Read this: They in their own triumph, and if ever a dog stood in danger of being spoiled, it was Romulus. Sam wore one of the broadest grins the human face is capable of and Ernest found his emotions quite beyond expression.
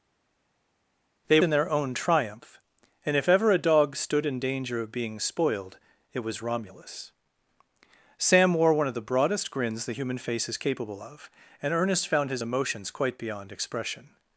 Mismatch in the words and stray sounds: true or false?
false